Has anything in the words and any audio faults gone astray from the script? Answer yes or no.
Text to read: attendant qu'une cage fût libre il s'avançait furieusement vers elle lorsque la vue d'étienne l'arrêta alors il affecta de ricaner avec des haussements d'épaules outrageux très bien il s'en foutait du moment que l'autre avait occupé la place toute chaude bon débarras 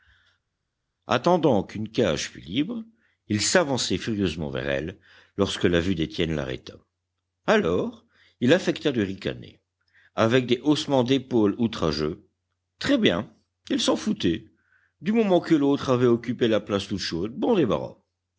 no